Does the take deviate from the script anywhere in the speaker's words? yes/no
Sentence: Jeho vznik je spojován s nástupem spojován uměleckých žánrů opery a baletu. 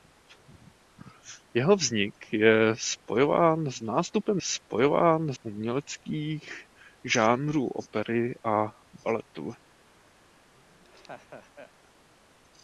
no